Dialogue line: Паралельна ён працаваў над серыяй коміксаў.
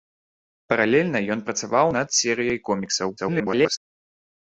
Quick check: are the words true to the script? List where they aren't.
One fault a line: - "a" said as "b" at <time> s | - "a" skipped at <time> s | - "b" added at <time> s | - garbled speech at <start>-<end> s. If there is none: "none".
- garbled speech at 3.2-3.8 s